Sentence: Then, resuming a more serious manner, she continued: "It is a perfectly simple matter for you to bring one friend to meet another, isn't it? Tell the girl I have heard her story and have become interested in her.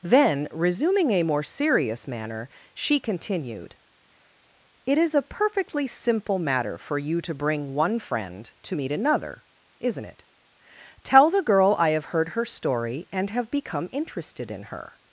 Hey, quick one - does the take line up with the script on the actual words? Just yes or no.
yes